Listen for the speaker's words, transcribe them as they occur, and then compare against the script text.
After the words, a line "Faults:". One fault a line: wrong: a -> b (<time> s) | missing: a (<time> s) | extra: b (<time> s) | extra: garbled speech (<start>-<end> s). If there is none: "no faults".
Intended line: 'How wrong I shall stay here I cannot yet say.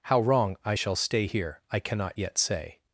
'How wrong I shall stay here I cannot yet say.
Faults:
no faults